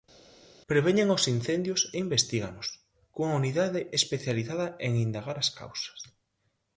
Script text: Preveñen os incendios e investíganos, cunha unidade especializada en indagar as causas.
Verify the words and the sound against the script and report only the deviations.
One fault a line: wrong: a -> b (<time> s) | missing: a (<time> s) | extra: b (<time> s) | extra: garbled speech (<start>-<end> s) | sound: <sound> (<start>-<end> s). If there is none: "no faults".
no faults